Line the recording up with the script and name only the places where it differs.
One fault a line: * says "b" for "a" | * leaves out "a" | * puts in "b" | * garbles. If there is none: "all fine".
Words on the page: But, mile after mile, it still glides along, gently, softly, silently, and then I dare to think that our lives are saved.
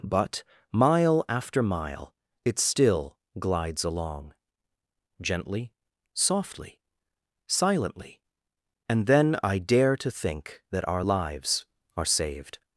all fine